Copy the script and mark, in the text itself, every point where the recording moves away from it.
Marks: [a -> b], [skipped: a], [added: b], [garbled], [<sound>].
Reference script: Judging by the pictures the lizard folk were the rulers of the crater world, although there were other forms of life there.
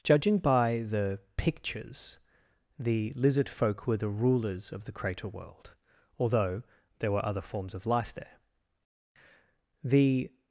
Judging by the pictures the lizard folk were the rulers of the crater world, although there were other forms of life there. [added: The]